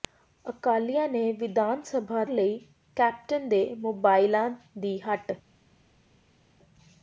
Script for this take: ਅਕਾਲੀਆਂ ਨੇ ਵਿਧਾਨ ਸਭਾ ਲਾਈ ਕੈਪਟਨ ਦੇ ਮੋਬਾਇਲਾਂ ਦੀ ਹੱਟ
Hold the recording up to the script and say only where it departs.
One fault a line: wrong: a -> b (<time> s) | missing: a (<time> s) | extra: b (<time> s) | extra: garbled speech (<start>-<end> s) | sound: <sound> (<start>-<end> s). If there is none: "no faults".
no faults